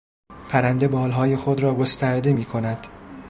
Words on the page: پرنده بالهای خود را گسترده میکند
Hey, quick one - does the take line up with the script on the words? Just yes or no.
yes